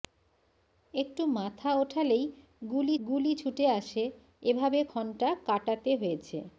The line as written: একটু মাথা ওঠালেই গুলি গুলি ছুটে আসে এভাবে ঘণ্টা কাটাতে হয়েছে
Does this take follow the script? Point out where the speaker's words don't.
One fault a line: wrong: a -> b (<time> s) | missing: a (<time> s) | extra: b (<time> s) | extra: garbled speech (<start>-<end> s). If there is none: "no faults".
no faults